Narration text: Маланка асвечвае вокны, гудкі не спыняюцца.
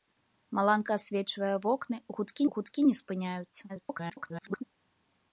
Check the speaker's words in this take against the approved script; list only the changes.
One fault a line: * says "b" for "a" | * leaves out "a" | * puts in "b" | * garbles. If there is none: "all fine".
* puts in "гудкі"
* garbles